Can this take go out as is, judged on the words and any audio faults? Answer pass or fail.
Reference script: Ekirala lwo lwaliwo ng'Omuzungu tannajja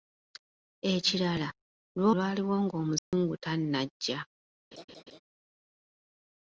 fail